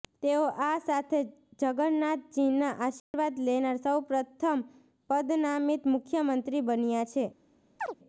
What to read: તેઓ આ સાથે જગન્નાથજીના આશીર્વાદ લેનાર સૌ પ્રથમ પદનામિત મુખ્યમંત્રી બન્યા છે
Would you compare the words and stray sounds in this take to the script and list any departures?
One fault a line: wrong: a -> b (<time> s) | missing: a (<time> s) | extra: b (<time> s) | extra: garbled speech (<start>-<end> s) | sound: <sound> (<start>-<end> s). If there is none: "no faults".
sound: dropout (3.0-3.1 s)
sound: chirp (7.8-8.0 s)